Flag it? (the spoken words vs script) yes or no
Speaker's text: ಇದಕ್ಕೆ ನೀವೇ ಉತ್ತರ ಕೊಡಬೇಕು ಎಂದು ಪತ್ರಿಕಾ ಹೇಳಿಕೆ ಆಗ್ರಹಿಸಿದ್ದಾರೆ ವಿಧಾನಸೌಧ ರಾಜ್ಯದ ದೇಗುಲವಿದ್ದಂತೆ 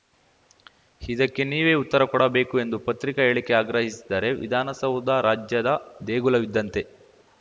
no